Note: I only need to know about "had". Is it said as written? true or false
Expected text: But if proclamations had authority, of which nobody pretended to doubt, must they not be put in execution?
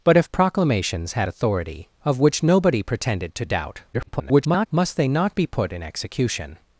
true